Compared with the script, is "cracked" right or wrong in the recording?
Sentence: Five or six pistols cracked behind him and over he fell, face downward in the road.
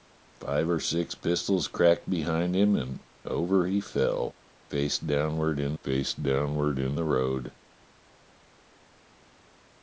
right